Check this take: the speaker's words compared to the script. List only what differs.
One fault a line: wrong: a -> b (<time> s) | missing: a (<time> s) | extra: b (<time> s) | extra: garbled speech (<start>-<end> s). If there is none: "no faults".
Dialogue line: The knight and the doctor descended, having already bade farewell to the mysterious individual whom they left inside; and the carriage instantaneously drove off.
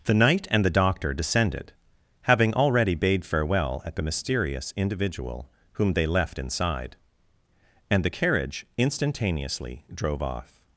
wrong: to -> at (3.9 s)